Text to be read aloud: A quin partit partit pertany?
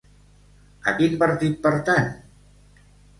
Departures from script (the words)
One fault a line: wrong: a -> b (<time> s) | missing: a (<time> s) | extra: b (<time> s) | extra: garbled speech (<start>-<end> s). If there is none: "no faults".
missing: partit (1.5 s)